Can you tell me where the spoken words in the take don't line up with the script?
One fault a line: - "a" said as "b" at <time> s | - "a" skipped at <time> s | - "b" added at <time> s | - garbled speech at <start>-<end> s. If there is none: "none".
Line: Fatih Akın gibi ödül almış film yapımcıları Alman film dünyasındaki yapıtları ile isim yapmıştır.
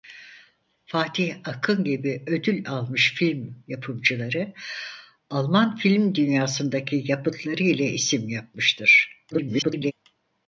- garbled speech at 9.3-9.9 s